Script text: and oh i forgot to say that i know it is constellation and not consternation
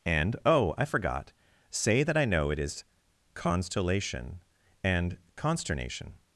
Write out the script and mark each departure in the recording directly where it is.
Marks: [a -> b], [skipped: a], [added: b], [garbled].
and oh i forgot [skipped: to] say that i know it is constellation and [skipped: not] consternation